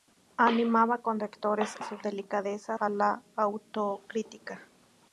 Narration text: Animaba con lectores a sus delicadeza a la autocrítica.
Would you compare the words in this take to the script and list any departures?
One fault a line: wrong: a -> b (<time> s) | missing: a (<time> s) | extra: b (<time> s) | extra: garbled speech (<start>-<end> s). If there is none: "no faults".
no faults